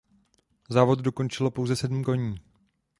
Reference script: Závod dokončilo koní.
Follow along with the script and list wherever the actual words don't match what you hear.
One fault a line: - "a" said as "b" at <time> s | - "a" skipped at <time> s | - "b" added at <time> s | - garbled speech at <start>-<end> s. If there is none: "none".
- "pouze sedm" added at 1.5 s